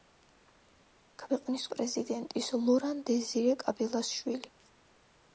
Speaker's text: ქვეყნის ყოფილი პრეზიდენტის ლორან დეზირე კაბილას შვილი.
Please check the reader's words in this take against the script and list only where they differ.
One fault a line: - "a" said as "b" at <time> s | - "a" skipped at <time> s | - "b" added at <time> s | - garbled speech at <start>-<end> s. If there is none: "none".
- "ყოფილი" skipped at 1.6 s